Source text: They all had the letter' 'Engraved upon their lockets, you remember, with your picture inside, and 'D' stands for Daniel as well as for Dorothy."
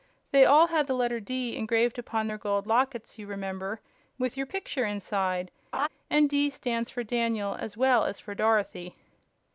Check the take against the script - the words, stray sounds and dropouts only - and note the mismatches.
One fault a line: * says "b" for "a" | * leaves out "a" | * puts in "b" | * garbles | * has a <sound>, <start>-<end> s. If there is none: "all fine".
* puts in "D"
* puts in "gold"
* has a laugh, 5.7-5.9 s